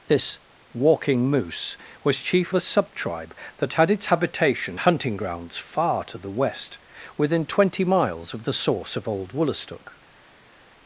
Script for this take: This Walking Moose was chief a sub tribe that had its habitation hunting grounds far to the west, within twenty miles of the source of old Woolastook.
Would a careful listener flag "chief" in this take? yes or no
no